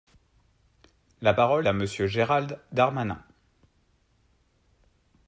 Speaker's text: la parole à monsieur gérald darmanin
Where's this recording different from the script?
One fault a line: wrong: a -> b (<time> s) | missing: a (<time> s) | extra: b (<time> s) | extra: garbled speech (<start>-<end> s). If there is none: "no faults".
no faults